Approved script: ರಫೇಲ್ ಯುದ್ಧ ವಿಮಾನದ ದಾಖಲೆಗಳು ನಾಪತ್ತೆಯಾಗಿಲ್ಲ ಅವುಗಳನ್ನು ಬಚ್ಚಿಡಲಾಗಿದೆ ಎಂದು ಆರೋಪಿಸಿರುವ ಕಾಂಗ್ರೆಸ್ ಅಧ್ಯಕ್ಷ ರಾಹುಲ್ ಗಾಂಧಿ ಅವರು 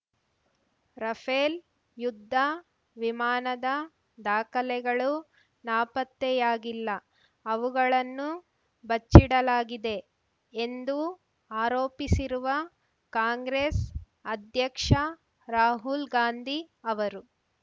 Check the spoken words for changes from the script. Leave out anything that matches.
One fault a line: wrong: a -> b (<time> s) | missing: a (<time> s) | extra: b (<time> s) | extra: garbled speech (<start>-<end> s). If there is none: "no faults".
no faults